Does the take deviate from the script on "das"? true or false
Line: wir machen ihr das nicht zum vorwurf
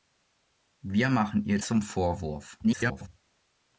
true